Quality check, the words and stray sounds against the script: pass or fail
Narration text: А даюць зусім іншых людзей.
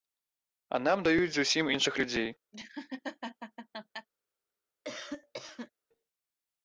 fail